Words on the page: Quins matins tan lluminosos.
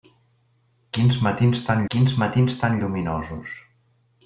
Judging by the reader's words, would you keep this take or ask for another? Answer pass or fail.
fail